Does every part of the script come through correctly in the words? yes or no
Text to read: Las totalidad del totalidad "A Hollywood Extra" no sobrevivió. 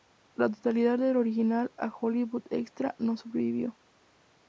no